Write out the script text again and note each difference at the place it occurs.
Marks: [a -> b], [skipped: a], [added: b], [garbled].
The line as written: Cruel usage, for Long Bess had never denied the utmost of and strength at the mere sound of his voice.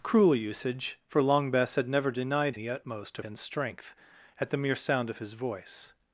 Cruel usage, for Long Bess had never denied the utmost of and strength at the mere sound of his voice.